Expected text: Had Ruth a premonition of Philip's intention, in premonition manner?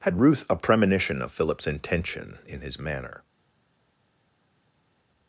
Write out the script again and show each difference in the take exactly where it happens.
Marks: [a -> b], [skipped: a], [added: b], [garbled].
Had Ruth a premonition of Philip's intention, in [premonition -> his] manner?